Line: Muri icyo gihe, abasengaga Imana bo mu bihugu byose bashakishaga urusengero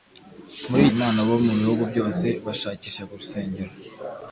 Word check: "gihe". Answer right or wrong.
wrong